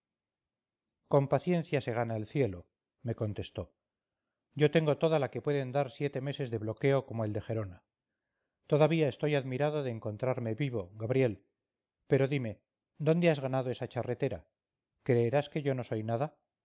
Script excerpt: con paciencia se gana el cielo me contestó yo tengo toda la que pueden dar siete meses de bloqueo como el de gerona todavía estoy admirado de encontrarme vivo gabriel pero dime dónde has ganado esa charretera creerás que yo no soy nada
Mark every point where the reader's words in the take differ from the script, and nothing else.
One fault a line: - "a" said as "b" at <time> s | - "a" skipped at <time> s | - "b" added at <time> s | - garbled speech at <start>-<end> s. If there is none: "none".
none